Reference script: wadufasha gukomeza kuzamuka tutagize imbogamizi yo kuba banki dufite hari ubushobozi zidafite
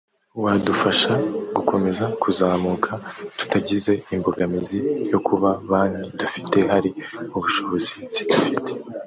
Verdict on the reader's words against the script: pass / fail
pass